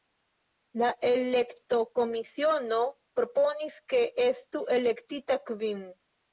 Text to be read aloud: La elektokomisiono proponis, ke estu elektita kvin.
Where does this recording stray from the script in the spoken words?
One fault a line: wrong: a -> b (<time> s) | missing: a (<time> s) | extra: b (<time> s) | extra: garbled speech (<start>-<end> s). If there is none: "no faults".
no faults